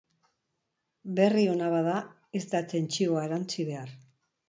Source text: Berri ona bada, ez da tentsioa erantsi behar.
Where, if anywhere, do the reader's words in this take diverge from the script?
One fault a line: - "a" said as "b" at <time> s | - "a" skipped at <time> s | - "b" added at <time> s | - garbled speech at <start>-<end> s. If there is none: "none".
none